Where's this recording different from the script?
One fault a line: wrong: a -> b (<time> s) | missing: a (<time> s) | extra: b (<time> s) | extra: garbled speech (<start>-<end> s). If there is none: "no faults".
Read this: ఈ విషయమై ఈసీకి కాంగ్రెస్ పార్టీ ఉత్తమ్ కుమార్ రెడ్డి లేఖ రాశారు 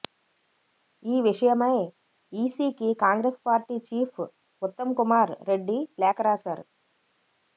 extra: చీఫ్ (3.9 s)